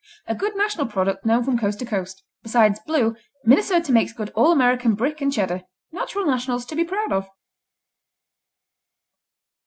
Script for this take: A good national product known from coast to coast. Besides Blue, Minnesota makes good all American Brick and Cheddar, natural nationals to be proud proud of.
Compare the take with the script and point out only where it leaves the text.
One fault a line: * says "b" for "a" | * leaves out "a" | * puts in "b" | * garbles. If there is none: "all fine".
* leaves out "proud"